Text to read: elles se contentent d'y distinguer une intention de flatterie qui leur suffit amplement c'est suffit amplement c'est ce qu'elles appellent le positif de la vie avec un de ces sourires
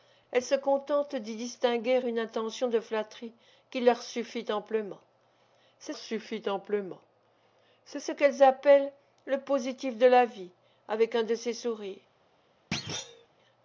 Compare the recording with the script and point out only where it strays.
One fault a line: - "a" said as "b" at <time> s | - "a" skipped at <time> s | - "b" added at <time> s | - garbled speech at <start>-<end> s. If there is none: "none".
none